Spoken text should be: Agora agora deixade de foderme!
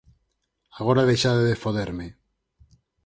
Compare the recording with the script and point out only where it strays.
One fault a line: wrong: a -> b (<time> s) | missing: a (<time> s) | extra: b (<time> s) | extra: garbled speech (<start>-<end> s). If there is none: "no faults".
missing: agora (1.1 s)